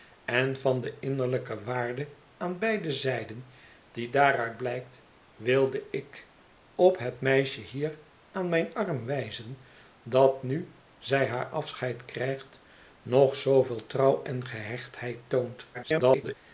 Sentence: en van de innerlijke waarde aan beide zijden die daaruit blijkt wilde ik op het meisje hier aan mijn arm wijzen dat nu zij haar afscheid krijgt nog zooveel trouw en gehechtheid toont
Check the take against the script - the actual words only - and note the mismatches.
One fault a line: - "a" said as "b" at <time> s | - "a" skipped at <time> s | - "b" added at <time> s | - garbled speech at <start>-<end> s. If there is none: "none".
- garbled speech at 15.7-16.4 s